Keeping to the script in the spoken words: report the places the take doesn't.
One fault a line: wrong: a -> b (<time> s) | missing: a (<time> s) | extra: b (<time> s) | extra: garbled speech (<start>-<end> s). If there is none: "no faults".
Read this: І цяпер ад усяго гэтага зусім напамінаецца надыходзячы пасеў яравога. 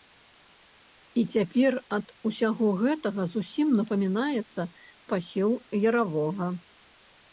missing: надыходзячы (4.6 s)